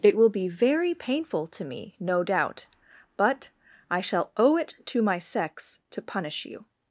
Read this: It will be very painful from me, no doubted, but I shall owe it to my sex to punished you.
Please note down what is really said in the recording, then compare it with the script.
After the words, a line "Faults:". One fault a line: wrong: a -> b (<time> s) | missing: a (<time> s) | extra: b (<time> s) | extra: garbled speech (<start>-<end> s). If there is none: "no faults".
It will be very painful to me, no doubt, but I shall owe it to my sex to punish you.
Faults:
wrong: from -> to (1.5 s)
wrong: doubted -> doubt (2.2 s)
wrong: punished -> punish (6.0 s)